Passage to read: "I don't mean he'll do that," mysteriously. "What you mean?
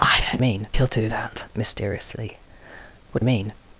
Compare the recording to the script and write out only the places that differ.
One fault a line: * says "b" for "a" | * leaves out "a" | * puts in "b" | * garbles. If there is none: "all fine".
all fine